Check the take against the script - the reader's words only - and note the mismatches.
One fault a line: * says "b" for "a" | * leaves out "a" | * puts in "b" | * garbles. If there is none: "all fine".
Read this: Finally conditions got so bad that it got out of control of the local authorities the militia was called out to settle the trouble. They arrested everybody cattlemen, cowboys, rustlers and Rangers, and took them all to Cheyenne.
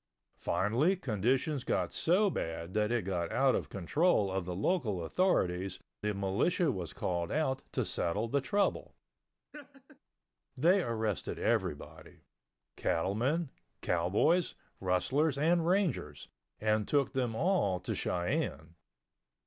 all fine